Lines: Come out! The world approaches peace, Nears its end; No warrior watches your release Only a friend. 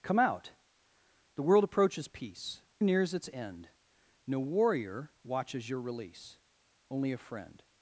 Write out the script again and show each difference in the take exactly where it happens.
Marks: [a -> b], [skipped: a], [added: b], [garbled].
Come out! The world approaches peace, Nears its end; No warrior watches your release Only a friend.